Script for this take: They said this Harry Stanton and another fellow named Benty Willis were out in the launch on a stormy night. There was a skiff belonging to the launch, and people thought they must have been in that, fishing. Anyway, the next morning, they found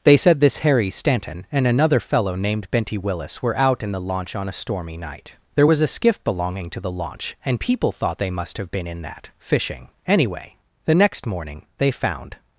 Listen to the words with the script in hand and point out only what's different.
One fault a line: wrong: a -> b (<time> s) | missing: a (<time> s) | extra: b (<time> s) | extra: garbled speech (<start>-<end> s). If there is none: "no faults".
no faults